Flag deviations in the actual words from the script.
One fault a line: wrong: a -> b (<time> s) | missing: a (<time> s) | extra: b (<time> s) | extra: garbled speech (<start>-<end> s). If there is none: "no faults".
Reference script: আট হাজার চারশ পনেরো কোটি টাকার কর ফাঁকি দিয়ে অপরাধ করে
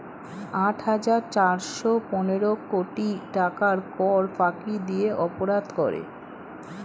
no faults